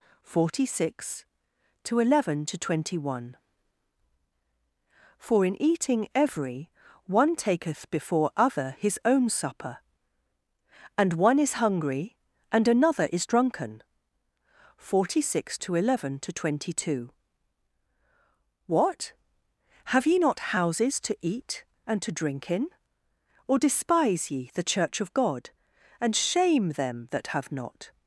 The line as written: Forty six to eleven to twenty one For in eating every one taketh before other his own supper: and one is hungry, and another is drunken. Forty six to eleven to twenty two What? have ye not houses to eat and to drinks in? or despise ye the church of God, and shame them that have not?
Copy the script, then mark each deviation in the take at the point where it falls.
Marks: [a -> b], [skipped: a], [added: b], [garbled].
Forty six to eleven to twenty one For in eating every one taketh before other his own supper: and one is hungry, and another is drunken. Forty six to eleven to twenty two What? have ye not houses to eat and to [drinks -> drink] in? or despise ye the church of God, and shame them that have not?